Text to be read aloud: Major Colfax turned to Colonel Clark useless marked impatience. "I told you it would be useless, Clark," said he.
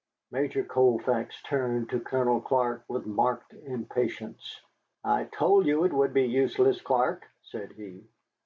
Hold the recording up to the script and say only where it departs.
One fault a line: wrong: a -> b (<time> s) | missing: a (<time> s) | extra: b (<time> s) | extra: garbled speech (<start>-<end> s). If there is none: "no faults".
wrong: useless -> with (2.9 s)